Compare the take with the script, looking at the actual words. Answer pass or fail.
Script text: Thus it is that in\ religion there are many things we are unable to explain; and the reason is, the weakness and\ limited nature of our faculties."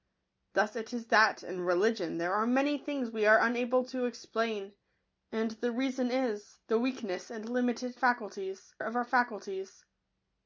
fail